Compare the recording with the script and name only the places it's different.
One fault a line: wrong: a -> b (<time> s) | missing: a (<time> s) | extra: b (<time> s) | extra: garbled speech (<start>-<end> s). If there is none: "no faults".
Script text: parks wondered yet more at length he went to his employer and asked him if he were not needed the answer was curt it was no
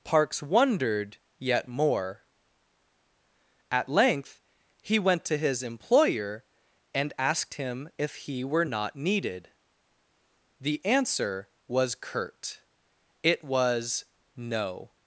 no faults